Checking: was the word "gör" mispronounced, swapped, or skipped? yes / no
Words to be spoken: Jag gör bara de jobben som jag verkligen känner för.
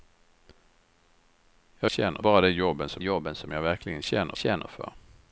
yes